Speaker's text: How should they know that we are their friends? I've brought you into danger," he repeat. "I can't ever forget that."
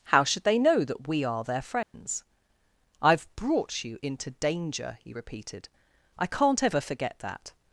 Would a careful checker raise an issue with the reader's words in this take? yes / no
yes